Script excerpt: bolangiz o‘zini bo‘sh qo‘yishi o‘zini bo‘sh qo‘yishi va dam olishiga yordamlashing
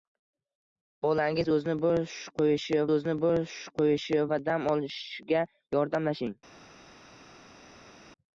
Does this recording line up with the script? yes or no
yes